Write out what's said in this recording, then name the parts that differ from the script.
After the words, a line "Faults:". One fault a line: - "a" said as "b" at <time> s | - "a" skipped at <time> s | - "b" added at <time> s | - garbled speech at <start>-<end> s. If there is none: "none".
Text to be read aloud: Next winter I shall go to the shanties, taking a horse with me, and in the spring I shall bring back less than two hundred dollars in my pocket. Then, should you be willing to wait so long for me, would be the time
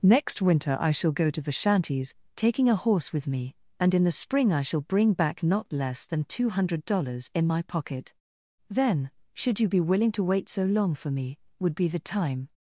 Next winter I shall go to the shanties, taking a horse with me, and in the spring I shall bring back not less than two hundred dollars in my pocket. Then, should you be willing to wait so long for me, would be the time
Faults:
- "not" added at 5.4 s